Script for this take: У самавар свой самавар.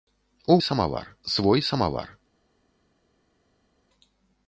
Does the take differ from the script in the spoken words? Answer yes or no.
no